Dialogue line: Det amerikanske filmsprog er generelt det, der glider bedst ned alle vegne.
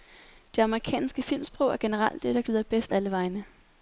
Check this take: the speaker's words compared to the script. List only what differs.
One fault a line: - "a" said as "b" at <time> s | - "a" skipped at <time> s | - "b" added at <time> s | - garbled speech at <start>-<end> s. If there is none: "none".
- "ned" skipped at 2.9 s